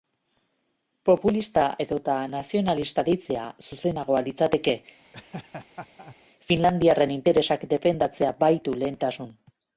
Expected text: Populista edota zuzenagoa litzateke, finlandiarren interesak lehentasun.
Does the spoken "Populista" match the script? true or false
true